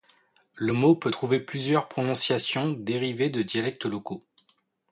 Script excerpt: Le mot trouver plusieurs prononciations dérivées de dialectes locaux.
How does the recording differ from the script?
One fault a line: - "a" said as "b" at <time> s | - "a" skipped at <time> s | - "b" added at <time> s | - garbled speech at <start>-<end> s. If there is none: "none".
- "peut" added at 0.9 s